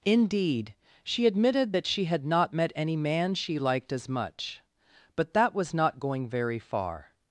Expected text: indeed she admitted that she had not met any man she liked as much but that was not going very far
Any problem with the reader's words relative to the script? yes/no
no